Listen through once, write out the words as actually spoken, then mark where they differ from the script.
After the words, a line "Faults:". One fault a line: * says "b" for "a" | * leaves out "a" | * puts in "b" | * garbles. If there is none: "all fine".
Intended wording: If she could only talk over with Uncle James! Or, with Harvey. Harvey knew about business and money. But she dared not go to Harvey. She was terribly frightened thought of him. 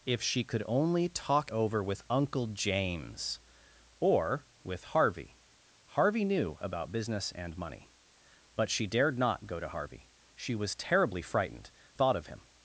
If she could only talk over with Uncle James! Or, with Harvey. Harvey knew about business and money. But she dared not go to Harvey. She was terribly frightened thought of him.
Faults:
all fine